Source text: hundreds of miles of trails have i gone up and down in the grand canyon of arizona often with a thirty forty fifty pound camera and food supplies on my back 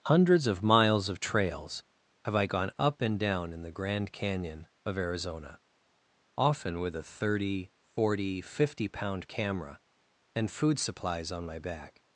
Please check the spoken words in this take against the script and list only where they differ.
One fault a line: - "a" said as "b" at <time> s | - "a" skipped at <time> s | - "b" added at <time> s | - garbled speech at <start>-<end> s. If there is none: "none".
none